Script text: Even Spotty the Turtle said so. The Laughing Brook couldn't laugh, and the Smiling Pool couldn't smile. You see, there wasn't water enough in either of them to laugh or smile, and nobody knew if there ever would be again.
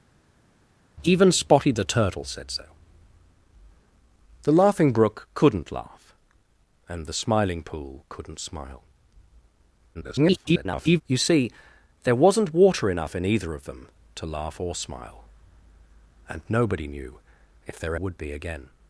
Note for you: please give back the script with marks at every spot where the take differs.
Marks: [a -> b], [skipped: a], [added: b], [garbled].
Even Spotty the Turtle said so. The Laughing Brook couldn't laugh, and the Smiling Pool couldn't smile. [garbled] You see, there wasn't water enough in either of them to laugh or smile, and nobody knew if there [skipped: ever] would be again.